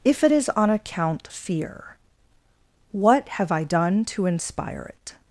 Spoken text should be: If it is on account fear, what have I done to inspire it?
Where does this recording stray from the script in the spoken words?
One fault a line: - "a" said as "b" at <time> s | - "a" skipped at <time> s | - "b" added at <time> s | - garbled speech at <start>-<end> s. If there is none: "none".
none